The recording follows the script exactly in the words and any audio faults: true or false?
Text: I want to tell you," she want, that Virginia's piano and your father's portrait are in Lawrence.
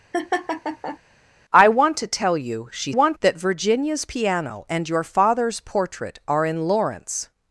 false